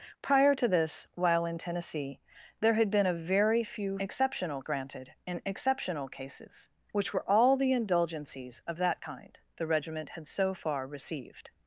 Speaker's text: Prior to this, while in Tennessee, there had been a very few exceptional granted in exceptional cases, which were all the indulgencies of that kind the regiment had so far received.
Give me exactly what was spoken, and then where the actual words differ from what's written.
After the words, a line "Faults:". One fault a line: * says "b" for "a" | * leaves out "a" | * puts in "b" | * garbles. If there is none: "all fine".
Prior to this, while in Tennessee, there had been a very few exceptional granted in exceptional cases, which were all the indulgencies of that kind the regiment had so far received.
Faults:
all fine